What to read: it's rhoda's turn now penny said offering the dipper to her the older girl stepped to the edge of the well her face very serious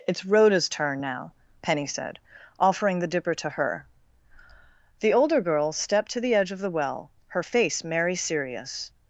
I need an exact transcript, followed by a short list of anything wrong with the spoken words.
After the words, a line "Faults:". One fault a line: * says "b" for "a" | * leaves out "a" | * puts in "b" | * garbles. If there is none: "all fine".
it's rhoda's turn now penny said offering the dipper to her the older girl stepped to the edge of the well her face merry serious
Faults:
* says "merry" for "very"